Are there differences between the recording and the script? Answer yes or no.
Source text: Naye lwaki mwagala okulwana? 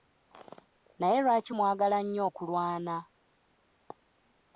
yes